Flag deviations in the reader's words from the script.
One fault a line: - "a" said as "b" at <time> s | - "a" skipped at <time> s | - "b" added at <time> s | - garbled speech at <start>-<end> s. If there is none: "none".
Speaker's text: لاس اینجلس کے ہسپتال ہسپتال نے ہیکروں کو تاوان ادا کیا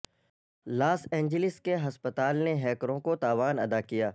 - "ہسپتال" skipped at 2.4 s